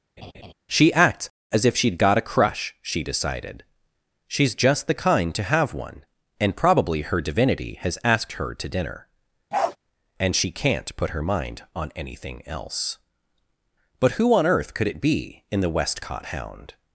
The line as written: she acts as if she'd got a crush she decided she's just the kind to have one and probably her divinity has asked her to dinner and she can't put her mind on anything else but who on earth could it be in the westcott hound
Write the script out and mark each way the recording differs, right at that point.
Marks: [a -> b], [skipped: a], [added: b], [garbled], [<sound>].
[laugh] she acts as if she'd got a crush she decided she's just the kind to have one and probably her divinity has asked her to dinner [bark] and she can't put her mind on anything else but who on earth could it be in the westcott hound